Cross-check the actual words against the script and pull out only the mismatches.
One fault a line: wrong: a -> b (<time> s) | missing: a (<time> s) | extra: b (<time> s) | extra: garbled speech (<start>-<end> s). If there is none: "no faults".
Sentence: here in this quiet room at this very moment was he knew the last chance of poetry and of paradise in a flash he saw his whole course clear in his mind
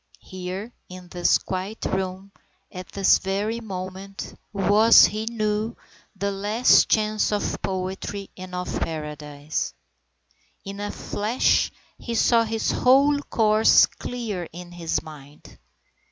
no faults